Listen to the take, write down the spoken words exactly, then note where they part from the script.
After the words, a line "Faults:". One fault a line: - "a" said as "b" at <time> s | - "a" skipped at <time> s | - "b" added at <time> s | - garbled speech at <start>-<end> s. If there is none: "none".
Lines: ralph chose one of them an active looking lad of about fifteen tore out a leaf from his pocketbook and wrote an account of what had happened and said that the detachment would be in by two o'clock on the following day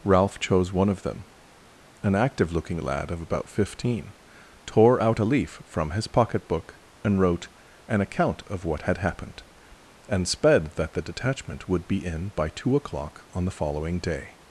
ralph chose one of them an active looking lad of about fifteen tore out a leaf from his pocketbook and wrote an account of what had happened and sped that the detachment would be in by two o'clock on the following day
Faults:
- "said" said as "sped" at 10.3 s